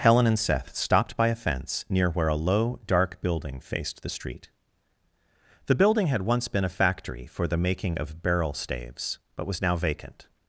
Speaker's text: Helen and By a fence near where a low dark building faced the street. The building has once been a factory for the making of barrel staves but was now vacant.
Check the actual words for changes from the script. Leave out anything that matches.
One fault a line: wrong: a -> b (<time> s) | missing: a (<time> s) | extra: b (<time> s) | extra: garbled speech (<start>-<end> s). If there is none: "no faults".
extra: Seth stopped (0.4 s)
wrong: has -> had (6.1 s)